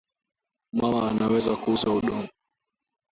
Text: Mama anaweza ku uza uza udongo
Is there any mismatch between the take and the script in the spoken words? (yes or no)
yes